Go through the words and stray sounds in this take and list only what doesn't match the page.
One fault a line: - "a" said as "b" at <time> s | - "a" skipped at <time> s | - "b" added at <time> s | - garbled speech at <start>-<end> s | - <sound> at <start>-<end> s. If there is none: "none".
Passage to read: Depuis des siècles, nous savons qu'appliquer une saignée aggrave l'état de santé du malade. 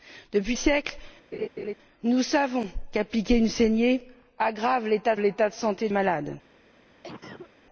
- "des" skipped at 0.6 s
- laugh at 1.3-1.7 s
- "l'état" added at 5.2 s
- "du" skipped at 5.9 s
- cough at 7.0-7.5 s